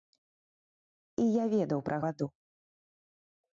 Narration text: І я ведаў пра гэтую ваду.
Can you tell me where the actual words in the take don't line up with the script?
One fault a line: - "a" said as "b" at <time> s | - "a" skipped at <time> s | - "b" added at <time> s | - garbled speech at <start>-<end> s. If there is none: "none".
- "гэтую" skipped at 2.0 s